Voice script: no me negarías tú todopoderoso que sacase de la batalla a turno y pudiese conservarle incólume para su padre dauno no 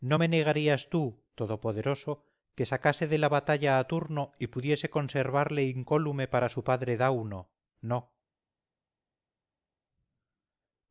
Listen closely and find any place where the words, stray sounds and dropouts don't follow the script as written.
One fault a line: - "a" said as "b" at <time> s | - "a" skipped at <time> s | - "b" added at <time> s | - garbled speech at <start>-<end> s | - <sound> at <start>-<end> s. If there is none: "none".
none